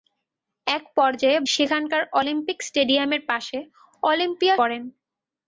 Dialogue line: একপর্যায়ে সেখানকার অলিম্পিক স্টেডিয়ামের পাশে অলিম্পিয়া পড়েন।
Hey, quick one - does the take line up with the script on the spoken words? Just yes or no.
yes